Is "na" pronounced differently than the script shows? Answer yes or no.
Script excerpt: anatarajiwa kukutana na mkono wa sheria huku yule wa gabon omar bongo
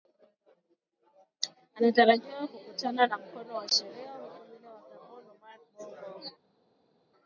no